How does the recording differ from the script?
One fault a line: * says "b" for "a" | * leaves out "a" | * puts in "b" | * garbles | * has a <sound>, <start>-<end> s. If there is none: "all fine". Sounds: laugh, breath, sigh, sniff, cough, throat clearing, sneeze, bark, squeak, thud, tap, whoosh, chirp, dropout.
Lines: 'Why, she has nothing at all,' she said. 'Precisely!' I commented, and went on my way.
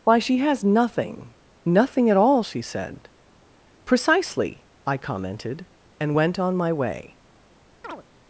* puts in "nothing"
* has a chirp, 7.8-8.0 s